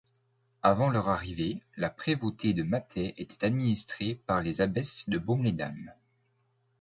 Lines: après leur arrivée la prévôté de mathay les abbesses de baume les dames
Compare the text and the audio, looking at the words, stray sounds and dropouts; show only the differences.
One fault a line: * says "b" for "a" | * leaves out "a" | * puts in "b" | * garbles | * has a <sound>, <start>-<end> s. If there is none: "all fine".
* says "avant" for "après"
* puts in "était administrée par"